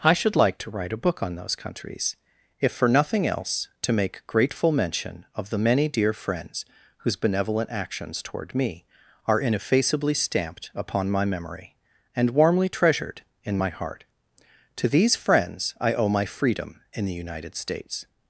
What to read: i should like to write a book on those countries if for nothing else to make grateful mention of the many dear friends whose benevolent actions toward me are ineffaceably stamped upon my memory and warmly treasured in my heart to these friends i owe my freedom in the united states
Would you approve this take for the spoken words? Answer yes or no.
yes